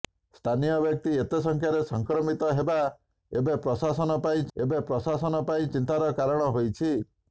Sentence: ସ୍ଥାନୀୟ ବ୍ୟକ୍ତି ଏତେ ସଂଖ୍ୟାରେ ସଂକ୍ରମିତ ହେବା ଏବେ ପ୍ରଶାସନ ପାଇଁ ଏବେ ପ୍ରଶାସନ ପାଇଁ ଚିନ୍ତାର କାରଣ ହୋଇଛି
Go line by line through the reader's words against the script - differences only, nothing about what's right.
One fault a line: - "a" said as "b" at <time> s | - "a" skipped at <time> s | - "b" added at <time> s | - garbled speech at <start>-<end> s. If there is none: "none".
none